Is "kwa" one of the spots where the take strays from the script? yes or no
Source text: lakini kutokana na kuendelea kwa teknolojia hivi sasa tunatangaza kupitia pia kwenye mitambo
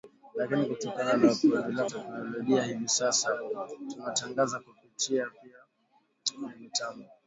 yes